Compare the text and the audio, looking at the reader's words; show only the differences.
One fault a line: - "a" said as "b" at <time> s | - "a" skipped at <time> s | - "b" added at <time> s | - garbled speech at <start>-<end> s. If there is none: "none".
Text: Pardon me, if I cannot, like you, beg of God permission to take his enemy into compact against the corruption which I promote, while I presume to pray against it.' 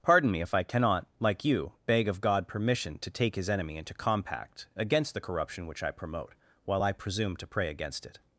none